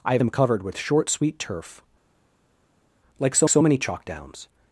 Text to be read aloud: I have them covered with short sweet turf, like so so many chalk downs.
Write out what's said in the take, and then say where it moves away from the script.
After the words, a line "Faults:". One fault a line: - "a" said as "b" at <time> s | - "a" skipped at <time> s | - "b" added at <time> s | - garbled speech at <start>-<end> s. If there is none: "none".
I have them covered with short sweet turf, like so so many chalk downs.
Faults:
none